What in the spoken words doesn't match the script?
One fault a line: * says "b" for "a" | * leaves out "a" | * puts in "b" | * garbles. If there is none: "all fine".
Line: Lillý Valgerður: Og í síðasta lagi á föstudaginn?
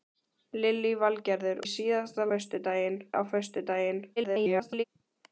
* leaves out "Og"
* says "föstudaginn" for "lagi"
* garbles